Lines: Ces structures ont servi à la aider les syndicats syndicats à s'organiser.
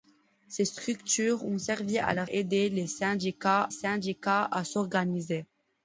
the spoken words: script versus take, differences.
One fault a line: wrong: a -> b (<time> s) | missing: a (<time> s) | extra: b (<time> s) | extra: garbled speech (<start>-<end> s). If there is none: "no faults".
no faults